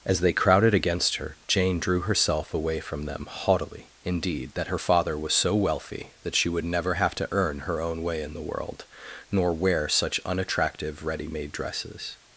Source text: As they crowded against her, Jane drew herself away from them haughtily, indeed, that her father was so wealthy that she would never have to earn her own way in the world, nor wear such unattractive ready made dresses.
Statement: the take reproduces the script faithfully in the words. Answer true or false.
true